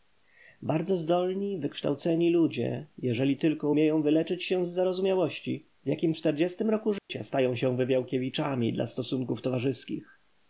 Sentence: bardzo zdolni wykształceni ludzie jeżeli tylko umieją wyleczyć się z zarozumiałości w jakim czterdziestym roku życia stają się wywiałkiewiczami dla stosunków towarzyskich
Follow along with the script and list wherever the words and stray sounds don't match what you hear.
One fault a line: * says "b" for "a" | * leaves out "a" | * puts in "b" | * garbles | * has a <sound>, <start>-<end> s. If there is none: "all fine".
* has a dropout, 7.0-7.1 s